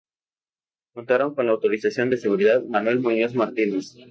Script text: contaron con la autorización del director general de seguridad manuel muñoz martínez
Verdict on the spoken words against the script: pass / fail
fail